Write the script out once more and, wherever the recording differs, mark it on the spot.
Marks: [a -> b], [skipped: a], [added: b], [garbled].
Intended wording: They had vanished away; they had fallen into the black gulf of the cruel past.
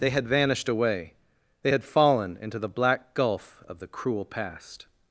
They had vanished away; they had fallen into the black gulf of the cruel past.